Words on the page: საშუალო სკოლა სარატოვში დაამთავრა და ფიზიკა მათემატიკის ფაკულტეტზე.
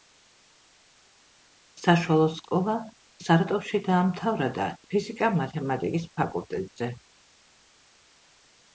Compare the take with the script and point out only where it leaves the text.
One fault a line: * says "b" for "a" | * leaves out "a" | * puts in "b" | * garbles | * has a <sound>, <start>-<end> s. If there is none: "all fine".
all fine